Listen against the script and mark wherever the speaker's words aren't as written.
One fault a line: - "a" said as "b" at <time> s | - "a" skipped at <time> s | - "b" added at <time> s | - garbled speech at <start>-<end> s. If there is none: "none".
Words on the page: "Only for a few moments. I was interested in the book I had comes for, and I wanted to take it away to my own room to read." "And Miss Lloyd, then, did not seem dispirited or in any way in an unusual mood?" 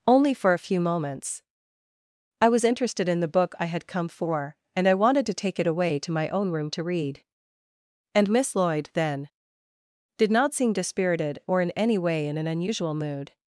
- "comes" said as "come" at 3.9 s